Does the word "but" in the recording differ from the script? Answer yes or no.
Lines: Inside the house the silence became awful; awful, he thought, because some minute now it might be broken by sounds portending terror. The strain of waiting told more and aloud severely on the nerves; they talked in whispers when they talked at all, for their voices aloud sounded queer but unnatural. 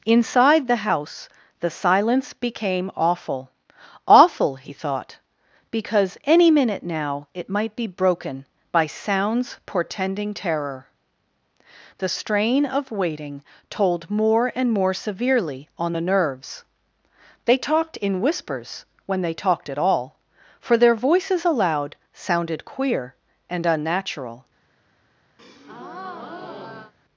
yes